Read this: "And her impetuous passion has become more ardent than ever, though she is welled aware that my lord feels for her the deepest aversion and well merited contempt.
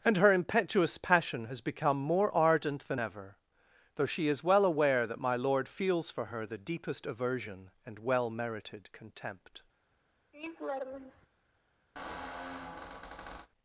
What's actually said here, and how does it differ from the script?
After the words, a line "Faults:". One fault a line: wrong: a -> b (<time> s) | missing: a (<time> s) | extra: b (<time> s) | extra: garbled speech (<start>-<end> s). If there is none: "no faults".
"And her impetuous passion has become more ardent than ever, though she is well aware that my lord feels for her the deepest aversion and well merited contempt.
Faults:
wrong: welled -> well (4.4 s)